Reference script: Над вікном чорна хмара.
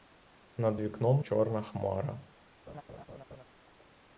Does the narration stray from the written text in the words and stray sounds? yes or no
yes